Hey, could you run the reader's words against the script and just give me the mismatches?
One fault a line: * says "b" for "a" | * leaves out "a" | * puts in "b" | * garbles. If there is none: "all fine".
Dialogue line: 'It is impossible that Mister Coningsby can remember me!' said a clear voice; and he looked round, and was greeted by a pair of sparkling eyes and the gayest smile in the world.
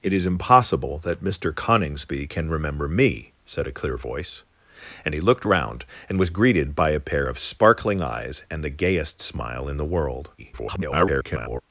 * garbles